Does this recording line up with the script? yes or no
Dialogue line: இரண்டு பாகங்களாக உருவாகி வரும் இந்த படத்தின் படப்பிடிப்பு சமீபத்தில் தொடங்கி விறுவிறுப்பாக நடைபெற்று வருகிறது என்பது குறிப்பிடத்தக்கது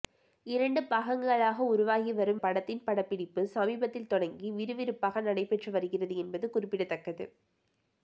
no